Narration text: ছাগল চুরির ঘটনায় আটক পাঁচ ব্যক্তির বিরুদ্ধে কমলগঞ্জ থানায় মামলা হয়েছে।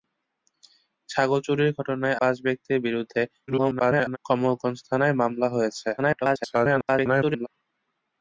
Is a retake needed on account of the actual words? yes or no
yes